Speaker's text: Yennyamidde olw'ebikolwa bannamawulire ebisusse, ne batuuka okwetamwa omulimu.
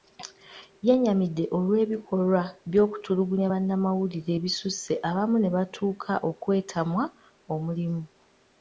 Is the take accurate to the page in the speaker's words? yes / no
no